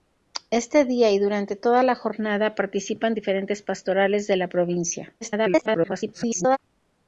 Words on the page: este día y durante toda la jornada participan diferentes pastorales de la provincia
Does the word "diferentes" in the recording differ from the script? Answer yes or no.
no